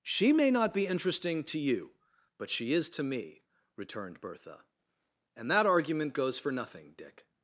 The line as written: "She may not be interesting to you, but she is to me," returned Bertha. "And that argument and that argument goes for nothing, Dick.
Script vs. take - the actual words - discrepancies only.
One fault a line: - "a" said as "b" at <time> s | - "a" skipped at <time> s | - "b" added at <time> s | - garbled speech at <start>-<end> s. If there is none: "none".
- "and that argument" skipped at 6.1 s